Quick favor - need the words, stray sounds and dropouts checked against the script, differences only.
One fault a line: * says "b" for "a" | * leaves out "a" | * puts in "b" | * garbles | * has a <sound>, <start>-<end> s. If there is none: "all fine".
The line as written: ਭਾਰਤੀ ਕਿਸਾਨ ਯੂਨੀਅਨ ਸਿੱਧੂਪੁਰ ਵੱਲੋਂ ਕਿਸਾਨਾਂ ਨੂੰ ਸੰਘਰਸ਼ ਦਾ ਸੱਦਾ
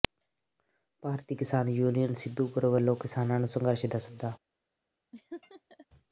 * has a laugh, 5.1-5.9 s